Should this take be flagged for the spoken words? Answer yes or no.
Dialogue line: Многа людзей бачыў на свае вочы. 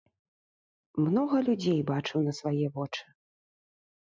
no